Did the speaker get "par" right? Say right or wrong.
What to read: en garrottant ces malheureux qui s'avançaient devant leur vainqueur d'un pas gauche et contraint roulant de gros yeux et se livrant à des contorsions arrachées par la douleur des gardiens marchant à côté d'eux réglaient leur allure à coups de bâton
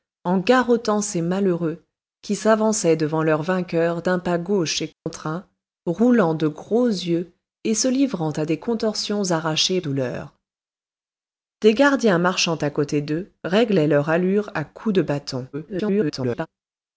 wrong